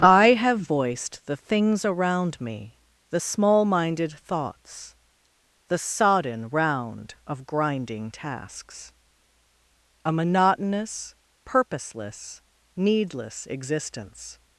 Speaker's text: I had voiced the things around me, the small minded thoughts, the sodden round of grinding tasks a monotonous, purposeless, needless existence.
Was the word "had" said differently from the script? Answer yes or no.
yes